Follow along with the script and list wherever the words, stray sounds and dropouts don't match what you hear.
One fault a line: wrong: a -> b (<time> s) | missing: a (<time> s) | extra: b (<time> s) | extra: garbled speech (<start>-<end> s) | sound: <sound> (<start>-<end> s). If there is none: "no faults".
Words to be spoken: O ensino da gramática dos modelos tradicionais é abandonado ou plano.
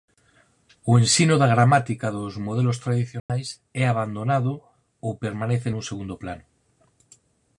sound: dropout (3.2-3.3 s)
extra: permanece nun segundo (5.2 s)